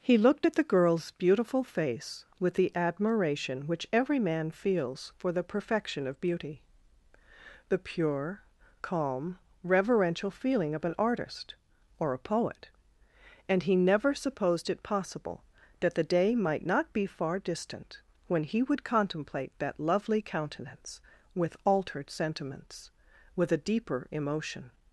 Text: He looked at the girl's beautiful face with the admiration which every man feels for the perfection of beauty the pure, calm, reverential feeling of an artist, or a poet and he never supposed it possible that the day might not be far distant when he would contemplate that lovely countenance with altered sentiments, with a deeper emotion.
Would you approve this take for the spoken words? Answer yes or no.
yes